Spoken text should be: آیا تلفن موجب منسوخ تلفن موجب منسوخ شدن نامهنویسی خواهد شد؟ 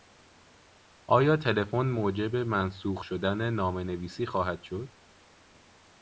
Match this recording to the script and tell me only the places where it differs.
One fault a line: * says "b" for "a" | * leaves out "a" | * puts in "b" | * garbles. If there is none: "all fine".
* leaves out "تلفن موجب منسوخ"